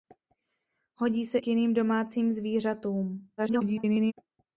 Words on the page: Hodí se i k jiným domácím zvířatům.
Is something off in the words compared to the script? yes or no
yes